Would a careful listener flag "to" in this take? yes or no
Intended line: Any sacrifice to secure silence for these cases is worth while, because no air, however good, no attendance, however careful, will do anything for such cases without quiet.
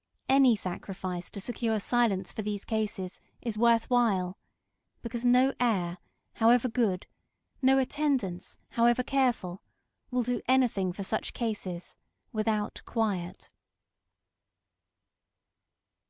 no